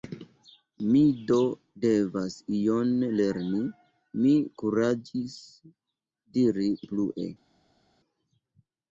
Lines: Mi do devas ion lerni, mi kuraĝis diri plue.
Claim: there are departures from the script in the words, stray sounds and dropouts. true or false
false